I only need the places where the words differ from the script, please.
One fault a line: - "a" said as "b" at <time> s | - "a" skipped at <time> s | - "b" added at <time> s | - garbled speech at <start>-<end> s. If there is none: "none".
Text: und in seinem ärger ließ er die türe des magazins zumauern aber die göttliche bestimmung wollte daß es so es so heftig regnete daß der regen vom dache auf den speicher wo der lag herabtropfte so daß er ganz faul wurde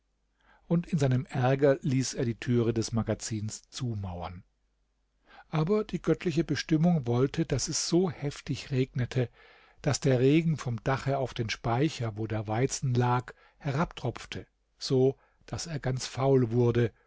- "es so" skipped at 8.1 s
- "weizen" added at 12.5 s